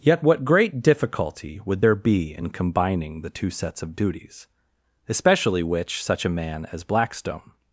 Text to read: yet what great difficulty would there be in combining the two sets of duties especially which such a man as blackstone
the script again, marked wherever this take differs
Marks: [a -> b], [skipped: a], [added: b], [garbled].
yet what great difficulty would there be in combining the two sets of duties especially which such a man as blackstone